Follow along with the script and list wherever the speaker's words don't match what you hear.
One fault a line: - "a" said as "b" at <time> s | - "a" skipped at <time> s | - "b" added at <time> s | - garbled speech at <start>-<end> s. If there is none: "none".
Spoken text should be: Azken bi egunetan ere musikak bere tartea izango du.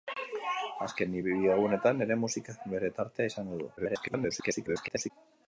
- garbled speech at 3.8-5.1 s